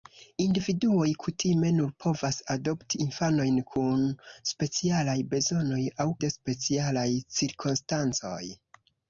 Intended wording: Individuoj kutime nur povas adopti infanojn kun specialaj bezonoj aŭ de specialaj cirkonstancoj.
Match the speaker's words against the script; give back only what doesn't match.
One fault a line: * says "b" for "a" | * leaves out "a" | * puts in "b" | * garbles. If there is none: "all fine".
all fine